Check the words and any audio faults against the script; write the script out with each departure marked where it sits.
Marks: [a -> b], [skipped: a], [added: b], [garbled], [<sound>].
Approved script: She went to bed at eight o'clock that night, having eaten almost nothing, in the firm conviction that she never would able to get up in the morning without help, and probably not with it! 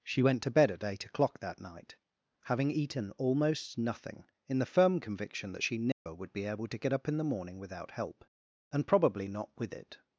She went to bed at eight o'clock that night, having eaten almost nothing, in the firm conviction that she never [dropout] would [added: be] able to get up in the morning without help, and probably not with it!